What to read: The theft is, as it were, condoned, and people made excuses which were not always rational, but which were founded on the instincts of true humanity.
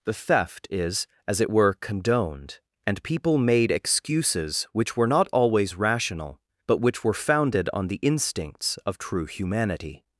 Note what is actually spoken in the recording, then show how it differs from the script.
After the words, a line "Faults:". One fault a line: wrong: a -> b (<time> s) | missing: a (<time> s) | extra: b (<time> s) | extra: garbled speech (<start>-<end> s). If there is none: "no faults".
The theft is, as it were, condoned, and people made excuses which were not always rational, but which were founded on the instincts of true humanity.
Faults:
no faults